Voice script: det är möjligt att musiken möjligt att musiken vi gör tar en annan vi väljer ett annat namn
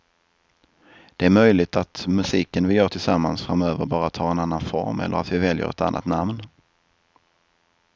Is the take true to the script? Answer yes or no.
no